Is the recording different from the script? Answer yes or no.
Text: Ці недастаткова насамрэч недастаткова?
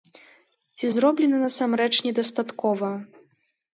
yes